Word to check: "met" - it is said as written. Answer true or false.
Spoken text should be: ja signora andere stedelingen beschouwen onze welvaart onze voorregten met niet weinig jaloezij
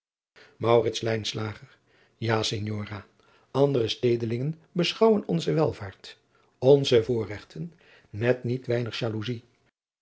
true